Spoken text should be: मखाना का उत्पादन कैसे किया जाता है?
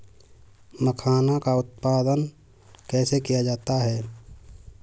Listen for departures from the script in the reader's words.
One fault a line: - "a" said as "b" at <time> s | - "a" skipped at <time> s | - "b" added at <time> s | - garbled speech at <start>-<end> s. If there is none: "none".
none